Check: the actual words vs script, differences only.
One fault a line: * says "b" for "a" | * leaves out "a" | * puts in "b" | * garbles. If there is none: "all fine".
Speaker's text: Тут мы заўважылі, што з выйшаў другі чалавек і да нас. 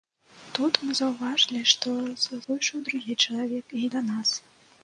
all fine